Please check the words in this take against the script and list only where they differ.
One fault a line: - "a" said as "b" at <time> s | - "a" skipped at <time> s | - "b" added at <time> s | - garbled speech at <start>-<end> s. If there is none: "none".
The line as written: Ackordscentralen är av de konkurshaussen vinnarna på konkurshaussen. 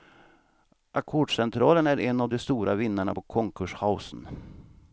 - "en" added at 2.0 s
- "konkurshaussen" said as "stora" at 2.4 s